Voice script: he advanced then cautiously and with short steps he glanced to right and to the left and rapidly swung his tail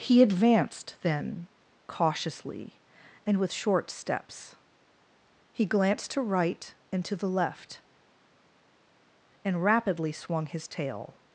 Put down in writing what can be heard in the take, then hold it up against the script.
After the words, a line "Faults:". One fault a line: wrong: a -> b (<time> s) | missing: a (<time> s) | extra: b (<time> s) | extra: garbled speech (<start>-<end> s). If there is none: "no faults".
he advanced then cautiously and with short steps he glanced to right and to the left and rapidly swung his tail
Faults:
no faults